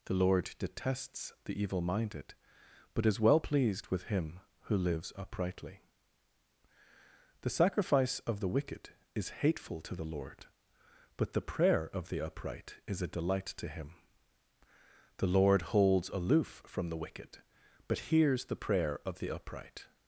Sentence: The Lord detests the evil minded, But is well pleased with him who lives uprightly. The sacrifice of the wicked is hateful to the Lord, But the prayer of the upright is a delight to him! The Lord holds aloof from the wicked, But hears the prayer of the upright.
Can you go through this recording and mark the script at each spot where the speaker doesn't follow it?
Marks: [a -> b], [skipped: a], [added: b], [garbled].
The Lord detests the evil minded, But is well pleased with him who lives uprightly. The sacrifice of the wicked is hateful to the Lord, But the prayer of the upright is a delight to him! The Lord holds aloof from the wicked, But hears the prayer of the upright.